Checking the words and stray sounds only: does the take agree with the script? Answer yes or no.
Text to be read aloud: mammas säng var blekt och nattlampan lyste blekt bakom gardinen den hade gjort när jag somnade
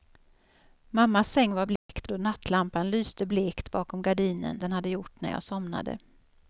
no